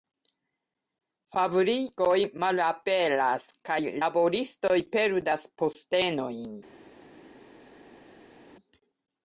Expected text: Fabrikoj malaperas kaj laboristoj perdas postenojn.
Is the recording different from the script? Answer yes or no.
no